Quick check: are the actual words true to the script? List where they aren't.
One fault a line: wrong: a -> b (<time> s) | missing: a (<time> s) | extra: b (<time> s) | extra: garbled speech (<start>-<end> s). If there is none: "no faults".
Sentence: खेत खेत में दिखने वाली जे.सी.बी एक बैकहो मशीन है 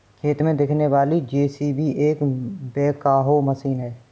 missing: खेत (0.4 s)